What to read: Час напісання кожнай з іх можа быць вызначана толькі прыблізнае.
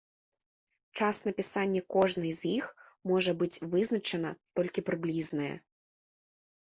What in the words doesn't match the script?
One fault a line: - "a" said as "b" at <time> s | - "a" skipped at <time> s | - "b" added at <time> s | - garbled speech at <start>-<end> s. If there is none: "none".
none